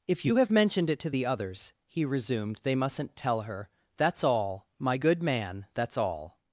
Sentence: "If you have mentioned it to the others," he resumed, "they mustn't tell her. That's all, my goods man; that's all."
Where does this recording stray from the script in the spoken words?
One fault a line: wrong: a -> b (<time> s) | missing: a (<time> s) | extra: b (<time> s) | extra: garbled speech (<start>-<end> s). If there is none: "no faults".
wrong: goods -> good (5.0 s)